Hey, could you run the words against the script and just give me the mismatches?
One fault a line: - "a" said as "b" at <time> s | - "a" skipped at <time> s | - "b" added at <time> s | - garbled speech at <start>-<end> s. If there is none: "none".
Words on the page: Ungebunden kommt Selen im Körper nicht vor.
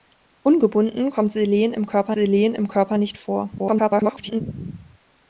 - "Selen im Körper" added at 2.1 s
- garbled speech at 3.6-4.4 s